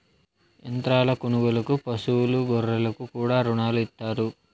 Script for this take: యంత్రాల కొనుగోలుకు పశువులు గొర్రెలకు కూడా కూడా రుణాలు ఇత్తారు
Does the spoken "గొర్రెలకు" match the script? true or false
true